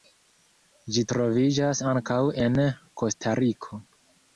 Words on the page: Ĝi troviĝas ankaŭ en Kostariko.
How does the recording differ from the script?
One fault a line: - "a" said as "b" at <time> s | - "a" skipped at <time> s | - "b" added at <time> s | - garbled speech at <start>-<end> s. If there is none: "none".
none